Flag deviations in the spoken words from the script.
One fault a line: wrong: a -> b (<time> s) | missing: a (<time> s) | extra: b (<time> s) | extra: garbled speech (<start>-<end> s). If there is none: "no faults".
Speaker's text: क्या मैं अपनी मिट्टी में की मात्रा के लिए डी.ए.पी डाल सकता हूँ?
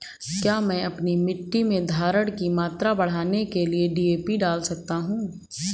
extra: धारण (1.9 s)
extra: बढ़ाने (2.9 s)